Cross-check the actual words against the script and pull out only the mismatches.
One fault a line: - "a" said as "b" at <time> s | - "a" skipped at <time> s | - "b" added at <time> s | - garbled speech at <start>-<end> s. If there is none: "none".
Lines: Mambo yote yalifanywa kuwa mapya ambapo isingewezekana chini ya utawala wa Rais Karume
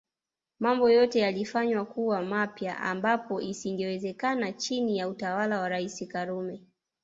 none